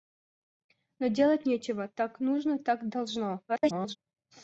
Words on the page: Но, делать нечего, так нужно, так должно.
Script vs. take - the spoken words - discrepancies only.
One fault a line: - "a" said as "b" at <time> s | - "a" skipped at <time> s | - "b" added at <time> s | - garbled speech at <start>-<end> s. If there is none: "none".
- garbled speech at 3.5-4.0 s